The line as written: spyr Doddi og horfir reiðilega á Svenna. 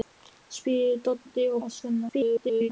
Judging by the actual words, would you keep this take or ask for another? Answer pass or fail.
fail